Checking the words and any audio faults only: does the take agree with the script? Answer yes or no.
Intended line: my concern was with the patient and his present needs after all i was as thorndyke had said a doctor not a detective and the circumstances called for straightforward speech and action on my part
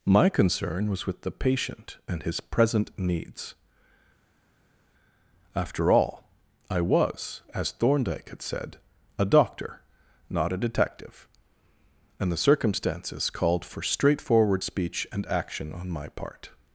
yes